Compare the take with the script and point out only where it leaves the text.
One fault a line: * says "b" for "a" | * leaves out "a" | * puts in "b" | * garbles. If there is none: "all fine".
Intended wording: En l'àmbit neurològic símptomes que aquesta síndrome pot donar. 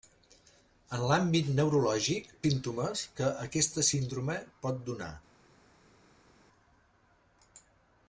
all fine